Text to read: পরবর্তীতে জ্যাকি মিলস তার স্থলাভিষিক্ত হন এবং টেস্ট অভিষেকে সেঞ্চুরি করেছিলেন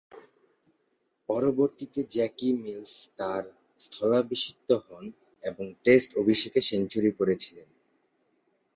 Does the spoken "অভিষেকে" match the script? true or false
true